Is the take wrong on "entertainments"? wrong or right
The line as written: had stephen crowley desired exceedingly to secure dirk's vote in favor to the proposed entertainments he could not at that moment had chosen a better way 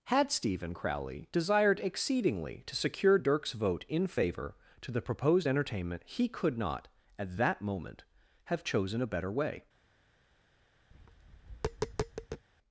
wrong